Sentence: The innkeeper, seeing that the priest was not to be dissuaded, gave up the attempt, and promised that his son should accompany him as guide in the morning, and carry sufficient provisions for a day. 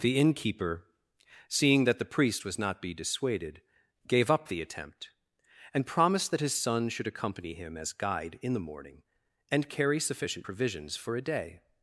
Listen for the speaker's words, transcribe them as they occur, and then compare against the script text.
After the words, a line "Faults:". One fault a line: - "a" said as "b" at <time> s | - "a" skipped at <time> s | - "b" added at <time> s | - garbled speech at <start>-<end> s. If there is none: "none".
The innkeeper, seeing that the priest was not be dissuaded, gave up the attempt, and promised that his son should accompany him as guide in the morning, and carry sufficient provisions for a day.
Faults:
- "to" skipped at 2.8 s